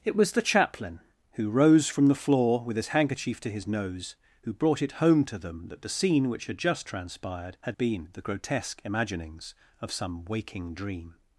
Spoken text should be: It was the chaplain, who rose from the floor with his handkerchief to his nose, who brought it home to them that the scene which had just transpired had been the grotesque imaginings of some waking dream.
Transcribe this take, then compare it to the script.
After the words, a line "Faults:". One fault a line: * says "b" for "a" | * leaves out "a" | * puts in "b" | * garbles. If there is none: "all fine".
It was the chaplain, who rose from the floor with his handkerchief to his nose, who brought it home to them that the scene which had just transpired had been the grotesque imaginings of some waking dream.
Faults:
all fine